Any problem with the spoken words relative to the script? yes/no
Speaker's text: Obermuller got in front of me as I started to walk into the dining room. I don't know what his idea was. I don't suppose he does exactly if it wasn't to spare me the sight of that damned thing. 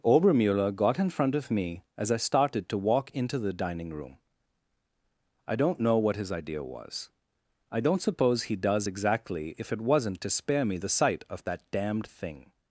no